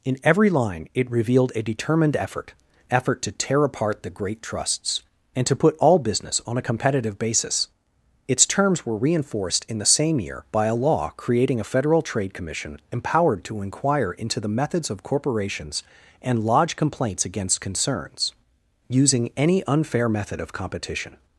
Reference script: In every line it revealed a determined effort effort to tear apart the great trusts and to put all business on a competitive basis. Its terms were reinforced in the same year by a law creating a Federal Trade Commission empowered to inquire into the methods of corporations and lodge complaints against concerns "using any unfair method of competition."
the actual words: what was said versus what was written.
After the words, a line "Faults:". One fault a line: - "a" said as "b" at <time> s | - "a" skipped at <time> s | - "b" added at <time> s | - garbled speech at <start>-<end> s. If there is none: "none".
In every line it revealed a determined effort effort to tear apart the great trusts and to put all business on a competitive basis. Its terms were reinforced in the same year by a law creating a Federal Trade Commission empowered to inquire into the methods of corporations and lodge complaints against concerns "using any unfair method of competition."
Faults:
none